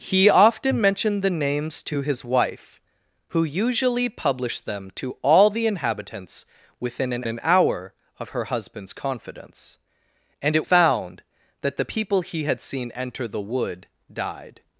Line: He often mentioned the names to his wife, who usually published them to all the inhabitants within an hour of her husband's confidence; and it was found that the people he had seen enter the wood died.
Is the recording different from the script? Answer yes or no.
yes